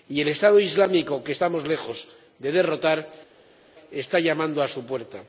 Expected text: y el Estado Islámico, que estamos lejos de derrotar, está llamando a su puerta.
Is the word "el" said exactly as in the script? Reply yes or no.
yes